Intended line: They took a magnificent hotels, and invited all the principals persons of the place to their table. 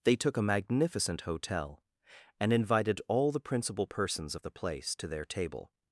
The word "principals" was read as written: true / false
false